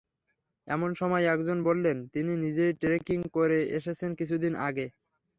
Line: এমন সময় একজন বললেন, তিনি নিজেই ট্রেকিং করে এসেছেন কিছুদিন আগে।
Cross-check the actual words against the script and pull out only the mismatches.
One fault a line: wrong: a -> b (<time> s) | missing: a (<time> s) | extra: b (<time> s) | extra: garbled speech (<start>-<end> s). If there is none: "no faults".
no faults